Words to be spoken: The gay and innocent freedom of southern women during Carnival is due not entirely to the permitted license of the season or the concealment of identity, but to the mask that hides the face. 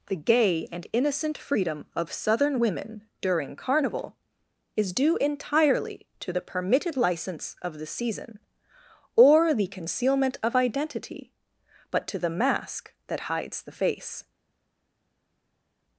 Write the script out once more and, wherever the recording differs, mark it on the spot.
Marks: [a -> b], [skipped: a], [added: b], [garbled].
The gay and innocent freedom of southern women during Carnival is due [skipped: not] entirely to the permitted license of the season or the concealment of identity, but to the mask that hides the face.